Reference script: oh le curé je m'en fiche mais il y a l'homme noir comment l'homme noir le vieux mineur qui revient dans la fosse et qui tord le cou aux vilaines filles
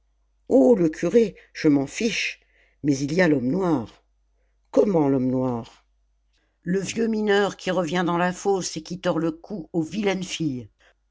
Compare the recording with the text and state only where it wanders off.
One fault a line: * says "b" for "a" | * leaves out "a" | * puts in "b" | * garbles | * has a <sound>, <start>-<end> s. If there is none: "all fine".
all fine